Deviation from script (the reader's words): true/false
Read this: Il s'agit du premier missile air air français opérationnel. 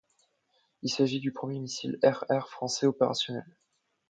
false